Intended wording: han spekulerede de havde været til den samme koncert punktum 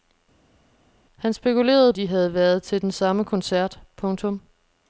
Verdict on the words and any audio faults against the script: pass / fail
pass